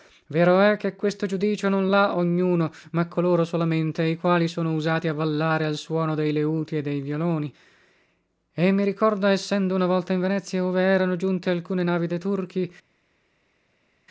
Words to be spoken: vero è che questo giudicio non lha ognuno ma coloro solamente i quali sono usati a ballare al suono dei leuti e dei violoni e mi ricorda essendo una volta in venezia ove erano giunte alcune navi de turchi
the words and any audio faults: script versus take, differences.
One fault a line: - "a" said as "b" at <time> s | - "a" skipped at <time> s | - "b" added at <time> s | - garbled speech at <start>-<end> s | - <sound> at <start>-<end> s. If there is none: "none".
none